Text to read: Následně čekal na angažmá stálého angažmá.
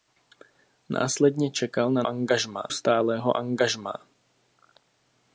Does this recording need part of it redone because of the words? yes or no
no